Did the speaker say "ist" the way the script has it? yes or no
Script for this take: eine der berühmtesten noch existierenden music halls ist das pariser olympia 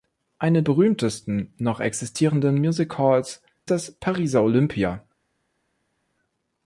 no